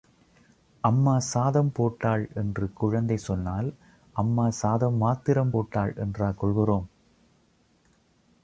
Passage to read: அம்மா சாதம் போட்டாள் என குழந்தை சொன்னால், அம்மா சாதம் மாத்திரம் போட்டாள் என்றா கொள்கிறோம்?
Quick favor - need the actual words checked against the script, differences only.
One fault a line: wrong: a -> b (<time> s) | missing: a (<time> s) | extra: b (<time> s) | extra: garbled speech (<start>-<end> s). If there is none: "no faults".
wrong: என -> என்று (2.3 s)